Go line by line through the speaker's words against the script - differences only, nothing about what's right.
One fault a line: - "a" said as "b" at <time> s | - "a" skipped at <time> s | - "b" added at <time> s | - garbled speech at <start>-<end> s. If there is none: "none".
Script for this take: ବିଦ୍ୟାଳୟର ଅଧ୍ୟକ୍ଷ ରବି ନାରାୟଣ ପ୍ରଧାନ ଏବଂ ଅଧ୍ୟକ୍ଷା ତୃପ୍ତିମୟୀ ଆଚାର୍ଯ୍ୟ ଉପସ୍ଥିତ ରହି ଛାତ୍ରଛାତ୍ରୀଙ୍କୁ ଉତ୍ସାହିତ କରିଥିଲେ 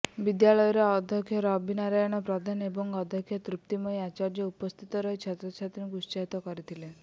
none